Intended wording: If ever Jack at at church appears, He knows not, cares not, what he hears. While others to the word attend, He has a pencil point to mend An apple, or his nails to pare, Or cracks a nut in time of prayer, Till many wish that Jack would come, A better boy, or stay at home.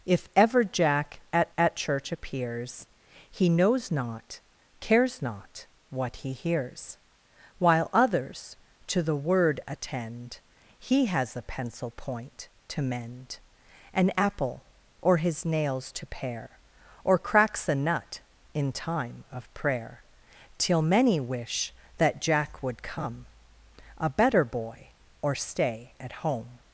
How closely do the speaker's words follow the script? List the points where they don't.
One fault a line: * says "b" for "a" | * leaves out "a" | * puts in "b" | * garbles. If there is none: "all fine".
all fine